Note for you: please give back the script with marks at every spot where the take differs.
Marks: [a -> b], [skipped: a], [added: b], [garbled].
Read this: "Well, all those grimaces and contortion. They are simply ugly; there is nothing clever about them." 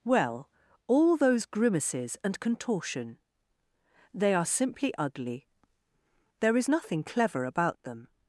"Well, all those grimaces and contortion. They are simply ugly; there is nothing clever about them."